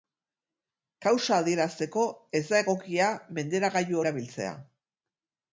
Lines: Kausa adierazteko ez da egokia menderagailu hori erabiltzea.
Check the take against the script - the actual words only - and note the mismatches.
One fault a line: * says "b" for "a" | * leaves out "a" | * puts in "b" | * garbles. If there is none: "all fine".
* leaves out "hori"